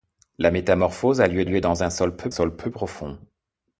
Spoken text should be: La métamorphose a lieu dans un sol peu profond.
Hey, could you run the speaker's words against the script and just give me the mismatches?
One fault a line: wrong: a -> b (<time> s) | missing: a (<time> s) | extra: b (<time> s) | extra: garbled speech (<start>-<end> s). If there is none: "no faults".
extra: lieu (1.4 s)
extra: sol peu (2.3 s)